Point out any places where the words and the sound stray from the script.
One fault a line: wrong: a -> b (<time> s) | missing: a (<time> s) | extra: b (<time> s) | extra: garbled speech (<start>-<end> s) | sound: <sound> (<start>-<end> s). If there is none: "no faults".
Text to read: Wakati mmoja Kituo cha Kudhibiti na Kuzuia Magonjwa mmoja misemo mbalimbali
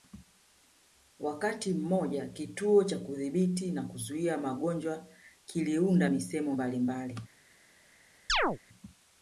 wrong: mmoja -> kiliunda (5.5 s)
sound: chirp (8.3-8.6 s)